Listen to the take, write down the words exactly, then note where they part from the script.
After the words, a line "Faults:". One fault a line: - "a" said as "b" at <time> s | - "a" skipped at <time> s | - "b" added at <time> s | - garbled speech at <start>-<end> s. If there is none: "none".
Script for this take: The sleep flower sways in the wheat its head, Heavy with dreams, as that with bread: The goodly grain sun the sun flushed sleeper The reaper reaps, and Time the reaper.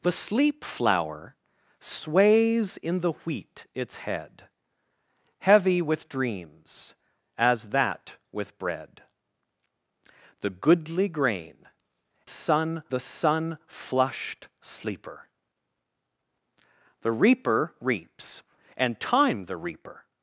The sleep flower sways in the wheat its head, Heavy with dreams, as that with bread: The goodly grain sun the sun flushed sleeper The reaper reaps, and Time the reaper.
Faults:
none